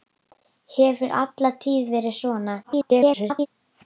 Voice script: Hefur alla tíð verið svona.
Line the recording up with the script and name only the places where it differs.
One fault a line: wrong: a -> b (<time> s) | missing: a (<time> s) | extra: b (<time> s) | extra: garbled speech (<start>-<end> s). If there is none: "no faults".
extra: garbled speech (2.6-3.5 s)